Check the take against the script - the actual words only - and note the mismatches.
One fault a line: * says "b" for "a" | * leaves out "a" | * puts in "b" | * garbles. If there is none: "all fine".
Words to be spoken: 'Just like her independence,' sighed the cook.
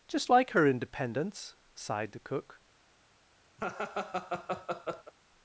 all fine